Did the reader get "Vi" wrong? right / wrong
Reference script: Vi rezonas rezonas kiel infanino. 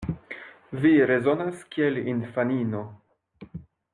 right